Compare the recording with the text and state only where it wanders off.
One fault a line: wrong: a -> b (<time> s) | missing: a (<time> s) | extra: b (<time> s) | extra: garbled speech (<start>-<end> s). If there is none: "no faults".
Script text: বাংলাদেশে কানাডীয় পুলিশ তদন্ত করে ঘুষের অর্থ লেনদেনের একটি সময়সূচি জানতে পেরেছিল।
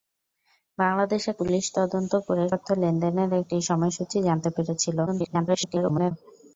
missing: কানাডীয় (1.3 s)
missing: ঘুষের (2.4 s)
extra: garbled speech (5.1-6.1 s)